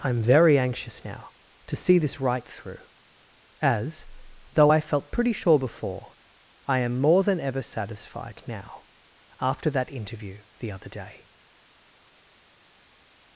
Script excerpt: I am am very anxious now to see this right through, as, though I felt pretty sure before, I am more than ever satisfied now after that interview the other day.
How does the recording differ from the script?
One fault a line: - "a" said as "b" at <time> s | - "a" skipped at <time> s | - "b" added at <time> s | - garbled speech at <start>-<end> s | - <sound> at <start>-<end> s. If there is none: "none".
- "am" skipped at 0.2 s